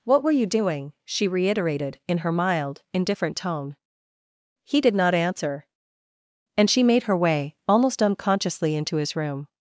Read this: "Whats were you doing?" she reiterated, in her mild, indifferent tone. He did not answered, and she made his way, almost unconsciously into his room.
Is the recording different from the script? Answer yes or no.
yes